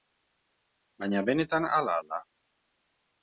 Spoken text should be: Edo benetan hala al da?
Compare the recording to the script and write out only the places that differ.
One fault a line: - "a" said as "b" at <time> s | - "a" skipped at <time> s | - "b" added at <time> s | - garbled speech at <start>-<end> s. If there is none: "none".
- "Edo" said as "Baina" at 1.0 s